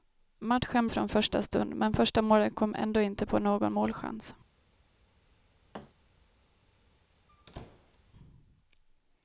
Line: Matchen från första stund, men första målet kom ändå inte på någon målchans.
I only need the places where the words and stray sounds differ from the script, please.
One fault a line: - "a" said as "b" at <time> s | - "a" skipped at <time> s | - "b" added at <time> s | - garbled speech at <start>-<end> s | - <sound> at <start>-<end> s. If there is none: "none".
- thud at 5.7-5.9 s
- squeak at 7.3-8.0 s